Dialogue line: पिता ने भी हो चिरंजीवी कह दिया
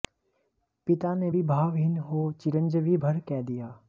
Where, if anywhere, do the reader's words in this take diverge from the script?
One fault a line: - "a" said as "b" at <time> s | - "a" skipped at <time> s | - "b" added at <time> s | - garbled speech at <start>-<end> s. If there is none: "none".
- "भावहीन" added at 1.4 s
- "भर" added at 3.0 s